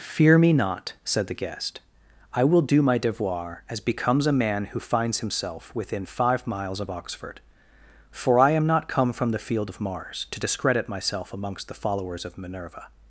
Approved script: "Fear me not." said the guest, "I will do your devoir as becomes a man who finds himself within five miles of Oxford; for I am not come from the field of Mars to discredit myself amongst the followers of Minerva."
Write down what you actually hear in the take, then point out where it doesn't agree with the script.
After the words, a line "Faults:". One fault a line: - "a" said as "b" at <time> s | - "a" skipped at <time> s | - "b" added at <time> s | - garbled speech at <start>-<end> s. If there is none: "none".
"Fear me not." said the guest, "I will do my devoir as becomes a man who finds himself within five miles of Oxford; for I am not come from the field of Mars to discredit myself amongst the followers of Minerva."
Faults:
- "your" said as "my" at 2.8 s